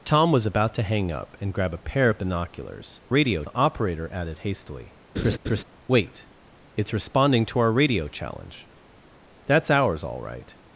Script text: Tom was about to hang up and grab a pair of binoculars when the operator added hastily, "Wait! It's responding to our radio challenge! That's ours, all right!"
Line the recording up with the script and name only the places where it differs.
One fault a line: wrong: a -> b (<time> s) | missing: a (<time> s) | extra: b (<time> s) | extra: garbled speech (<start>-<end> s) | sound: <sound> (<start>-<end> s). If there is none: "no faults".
wrong: when -> radio (3.1 s)
sound: laugh (5.2-5.6 s)